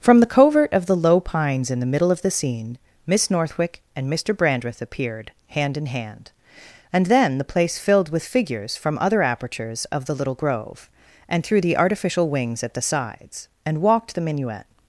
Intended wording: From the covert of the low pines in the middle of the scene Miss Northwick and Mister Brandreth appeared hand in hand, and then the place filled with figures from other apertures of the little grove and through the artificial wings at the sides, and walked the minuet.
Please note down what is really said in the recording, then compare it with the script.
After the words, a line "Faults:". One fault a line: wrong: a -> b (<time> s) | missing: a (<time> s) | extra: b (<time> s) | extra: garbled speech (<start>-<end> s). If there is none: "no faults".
From the covert of the low pines in the middle of the scene Miss Northwick and Mister Brandreth appeared hand in hand, and then the place filled with figures from other apertures of the little grove and through the artificial wings at the sides, and walked the minuet.
Faults:
no faults